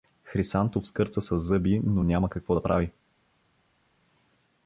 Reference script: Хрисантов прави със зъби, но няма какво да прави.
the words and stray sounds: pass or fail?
fail